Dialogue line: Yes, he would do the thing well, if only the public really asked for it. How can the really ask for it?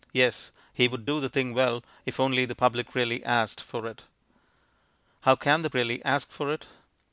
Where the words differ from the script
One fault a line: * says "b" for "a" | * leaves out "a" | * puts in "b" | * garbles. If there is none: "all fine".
all fine